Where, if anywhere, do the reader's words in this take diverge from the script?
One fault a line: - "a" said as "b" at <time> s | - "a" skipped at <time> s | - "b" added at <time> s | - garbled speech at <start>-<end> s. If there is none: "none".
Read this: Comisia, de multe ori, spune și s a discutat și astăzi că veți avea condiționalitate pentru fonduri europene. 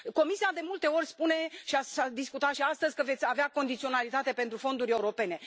none